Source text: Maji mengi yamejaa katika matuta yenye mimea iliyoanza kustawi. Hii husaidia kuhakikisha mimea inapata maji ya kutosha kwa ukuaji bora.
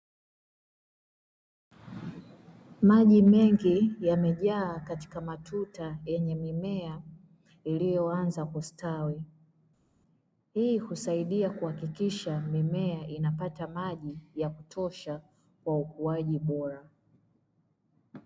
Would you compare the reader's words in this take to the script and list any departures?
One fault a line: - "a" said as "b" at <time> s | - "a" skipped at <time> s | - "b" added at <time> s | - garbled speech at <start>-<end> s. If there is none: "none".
none